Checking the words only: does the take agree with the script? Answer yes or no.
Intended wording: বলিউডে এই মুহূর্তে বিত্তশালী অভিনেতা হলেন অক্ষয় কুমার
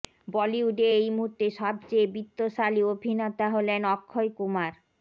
no